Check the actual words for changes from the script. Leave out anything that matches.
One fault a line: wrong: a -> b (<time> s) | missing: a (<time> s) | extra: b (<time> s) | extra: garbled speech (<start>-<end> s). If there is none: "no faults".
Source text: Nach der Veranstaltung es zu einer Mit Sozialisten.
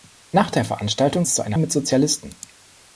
no faults